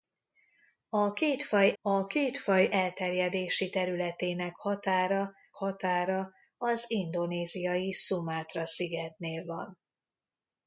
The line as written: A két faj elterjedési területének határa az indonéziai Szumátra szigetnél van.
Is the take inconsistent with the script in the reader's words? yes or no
yes